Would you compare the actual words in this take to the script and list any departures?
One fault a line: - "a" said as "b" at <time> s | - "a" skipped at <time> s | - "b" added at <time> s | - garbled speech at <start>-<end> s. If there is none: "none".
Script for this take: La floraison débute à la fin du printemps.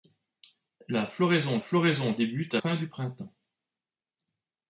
- "floraison" added at 1.6 s
- "la" skipped at 2.6 s